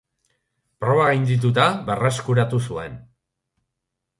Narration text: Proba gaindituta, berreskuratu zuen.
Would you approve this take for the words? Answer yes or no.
yes